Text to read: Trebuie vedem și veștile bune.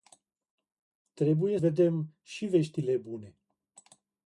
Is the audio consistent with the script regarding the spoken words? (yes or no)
yes